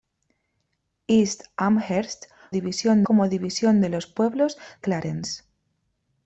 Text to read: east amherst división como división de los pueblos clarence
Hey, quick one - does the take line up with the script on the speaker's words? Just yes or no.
yes